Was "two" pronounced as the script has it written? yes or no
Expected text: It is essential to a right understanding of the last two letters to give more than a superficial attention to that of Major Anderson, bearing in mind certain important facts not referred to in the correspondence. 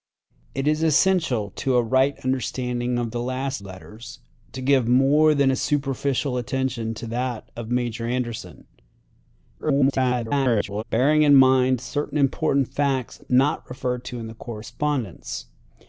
no